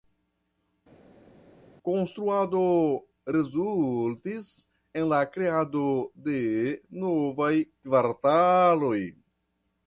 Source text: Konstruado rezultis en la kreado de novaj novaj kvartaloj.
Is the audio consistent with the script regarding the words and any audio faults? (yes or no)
no